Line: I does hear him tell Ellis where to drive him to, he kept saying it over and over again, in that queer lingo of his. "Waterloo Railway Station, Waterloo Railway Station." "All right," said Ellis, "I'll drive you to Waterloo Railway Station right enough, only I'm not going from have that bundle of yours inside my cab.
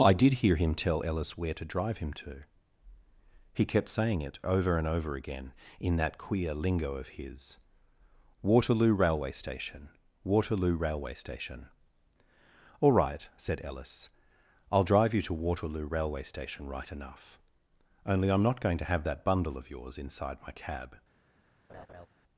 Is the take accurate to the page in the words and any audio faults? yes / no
no